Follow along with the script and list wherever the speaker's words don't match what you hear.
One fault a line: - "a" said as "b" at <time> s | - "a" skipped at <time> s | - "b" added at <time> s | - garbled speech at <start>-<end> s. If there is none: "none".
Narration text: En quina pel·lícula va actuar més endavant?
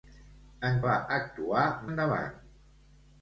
- "quina pel·lícula" skipped at 0.8 s
- "més" skipped at 1.7 s